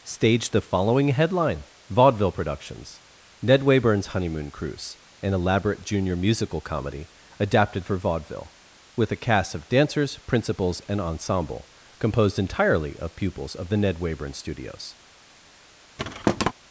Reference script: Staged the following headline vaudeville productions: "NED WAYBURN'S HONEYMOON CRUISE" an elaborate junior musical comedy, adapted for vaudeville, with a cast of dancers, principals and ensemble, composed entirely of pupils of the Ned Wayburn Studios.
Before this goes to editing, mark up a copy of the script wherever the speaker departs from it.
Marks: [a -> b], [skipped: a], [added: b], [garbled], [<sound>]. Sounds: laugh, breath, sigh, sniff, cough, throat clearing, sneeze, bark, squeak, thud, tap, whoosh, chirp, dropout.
Staged the following headline vaudeville productions: "NED WAYBURN'S HONEYMOON CRUISE" an elaborate junior musical comedy, adapted for vaudeville, with a cast of dancers, principals and ensemble, composed entirely of pupils of the Ned Wayburn Studios. [thud]